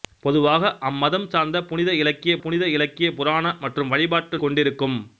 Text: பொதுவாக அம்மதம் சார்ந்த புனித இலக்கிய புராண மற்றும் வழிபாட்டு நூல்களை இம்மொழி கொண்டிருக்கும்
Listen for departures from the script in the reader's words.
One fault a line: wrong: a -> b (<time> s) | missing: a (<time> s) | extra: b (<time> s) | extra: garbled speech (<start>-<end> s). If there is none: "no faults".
extra: புனித இலக்கிய (2.4 s)
missing: நூல்களை இம்மொழி (4.4 s)